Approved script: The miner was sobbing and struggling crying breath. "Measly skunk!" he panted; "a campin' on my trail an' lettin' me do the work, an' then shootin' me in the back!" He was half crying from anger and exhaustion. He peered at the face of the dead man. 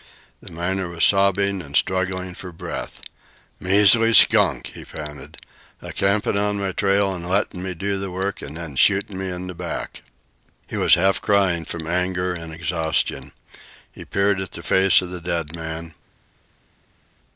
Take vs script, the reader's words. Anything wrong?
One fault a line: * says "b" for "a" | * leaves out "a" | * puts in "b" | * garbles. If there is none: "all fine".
* says "for" for "crying"